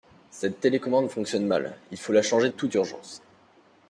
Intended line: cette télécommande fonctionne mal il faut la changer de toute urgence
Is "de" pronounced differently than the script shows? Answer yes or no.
yes